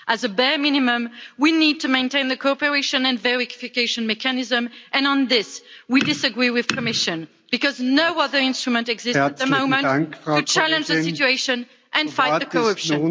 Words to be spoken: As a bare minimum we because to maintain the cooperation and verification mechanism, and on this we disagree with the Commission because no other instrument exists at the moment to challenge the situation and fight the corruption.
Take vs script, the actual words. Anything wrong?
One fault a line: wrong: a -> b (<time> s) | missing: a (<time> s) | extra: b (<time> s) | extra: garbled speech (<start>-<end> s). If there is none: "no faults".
wrong: because -> need (1.5 s)